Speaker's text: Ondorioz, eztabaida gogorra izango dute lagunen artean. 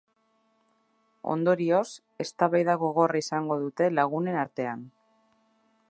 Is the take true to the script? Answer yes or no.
yes